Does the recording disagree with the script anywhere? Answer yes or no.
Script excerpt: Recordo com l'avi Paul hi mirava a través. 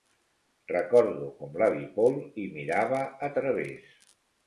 no